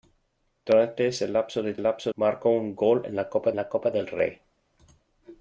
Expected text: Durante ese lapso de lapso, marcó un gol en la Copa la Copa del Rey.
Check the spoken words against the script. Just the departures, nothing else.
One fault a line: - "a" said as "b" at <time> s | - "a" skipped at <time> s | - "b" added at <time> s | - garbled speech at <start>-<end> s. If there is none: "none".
none